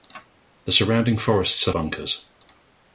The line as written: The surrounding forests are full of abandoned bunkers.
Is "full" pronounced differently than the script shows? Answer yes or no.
yes